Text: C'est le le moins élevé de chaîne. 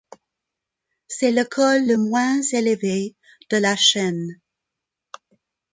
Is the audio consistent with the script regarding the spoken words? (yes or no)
no